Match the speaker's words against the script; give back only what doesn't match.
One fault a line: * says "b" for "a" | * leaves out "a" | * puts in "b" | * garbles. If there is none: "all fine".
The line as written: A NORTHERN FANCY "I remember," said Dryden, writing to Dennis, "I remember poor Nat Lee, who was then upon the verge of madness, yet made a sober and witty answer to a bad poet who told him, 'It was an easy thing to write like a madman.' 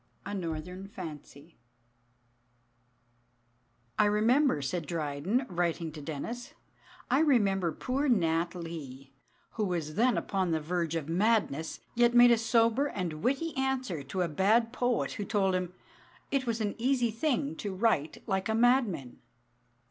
all fine